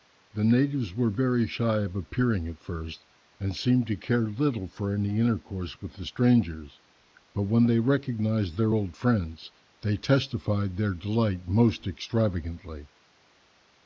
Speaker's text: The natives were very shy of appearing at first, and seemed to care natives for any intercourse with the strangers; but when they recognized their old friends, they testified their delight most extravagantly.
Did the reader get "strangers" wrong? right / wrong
right